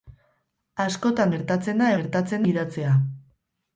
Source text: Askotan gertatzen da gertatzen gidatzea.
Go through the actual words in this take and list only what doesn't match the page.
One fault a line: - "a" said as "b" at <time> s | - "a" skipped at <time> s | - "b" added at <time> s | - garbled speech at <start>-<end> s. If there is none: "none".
none